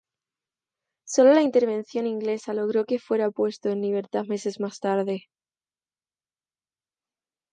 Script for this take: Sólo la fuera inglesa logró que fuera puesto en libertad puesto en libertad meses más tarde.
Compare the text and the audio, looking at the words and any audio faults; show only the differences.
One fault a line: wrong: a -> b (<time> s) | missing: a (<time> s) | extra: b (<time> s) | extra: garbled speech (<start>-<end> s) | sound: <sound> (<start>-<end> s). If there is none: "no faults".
wrong: fuera -> intervención (1.4 s)
missing: puesto en libertad (4.2 s)